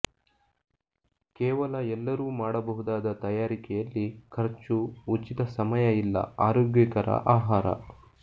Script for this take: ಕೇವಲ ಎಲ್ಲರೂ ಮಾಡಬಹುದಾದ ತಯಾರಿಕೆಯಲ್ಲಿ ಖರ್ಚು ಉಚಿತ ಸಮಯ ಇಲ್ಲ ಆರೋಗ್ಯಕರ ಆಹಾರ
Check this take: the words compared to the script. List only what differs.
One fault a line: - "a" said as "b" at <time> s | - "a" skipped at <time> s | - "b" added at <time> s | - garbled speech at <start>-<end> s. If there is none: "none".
none